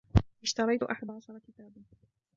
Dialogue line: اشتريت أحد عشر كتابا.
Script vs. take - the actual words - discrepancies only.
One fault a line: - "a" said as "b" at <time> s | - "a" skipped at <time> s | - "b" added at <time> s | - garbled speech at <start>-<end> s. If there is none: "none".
none